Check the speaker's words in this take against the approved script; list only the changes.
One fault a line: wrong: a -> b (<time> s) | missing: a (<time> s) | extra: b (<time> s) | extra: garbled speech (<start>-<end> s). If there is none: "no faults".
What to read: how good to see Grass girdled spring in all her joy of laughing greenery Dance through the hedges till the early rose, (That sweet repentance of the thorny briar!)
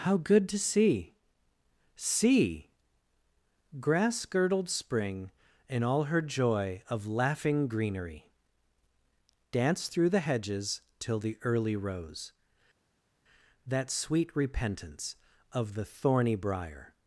extra: see (1.9 s)